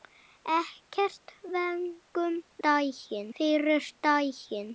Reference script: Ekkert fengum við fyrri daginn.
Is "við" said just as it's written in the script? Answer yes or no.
no